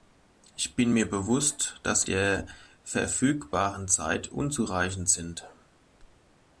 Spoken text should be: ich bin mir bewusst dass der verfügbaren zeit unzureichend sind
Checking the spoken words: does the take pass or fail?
pass